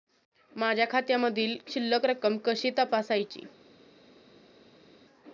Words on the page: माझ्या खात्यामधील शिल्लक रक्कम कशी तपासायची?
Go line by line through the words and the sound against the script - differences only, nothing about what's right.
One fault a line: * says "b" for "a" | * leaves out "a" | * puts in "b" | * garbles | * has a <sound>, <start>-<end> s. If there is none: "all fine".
all fine